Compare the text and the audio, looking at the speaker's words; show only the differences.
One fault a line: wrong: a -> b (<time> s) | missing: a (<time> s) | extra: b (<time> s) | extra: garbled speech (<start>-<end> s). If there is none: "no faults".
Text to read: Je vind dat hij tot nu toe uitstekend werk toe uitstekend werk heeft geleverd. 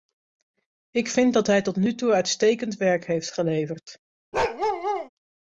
wrong: Je -> Ik (0.9 s)
missing: toe uitstekend werk (3.0 s)